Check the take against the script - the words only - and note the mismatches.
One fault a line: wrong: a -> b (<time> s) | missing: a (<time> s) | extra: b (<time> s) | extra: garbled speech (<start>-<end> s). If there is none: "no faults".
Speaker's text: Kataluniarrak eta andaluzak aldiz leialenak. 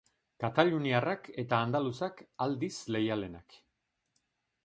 no faults